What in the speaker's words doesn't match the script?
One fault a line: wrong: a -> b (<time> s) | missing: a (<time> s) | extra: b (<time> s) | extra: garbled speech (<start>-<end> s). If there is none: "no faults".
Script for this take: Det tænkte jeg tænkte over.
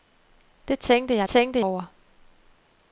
no faults